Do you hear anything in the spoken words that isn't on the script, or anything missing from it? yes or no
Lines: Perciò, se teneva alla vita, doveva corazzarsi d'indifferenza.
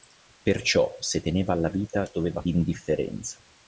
yes